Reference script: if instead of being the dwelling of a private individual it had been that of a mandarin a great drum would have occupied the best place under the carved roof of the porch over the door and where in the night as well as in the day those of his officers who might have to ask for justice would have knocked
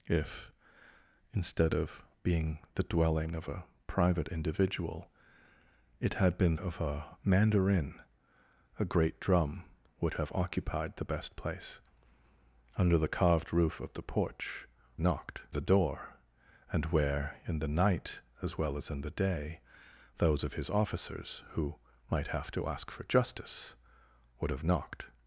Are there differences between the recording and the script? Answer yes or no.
yes